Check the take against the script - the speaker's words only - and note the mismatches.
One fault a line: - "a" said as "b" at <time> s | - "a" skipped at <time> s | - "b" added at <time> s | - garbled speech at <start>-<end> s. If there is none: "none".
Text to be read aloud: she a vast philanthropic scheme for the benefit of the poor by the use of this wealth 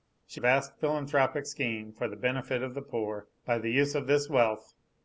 none